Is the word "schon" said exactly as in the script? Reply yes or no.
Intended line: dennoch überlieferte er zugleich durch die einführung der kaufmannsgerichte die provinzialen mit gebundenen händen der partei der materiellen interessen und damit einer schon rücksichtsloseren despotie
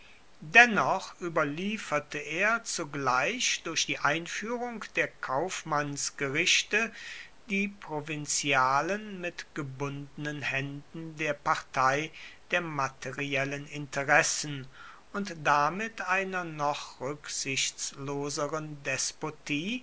no